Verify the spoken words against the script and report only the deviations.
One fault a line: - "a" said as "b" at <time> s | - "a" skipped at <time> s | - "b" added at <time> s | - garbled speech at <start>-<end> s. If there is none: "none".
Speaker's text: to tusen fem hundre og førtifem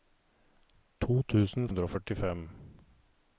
- "fem" skipped at 1.7 s